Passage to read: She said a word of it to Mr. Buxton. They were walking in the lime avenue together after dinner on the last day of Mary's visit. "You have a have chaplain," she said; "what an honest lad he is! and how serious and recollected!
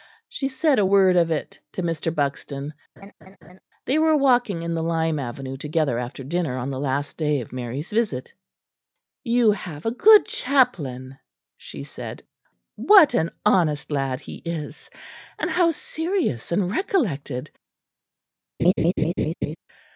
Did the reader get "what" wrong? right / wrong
right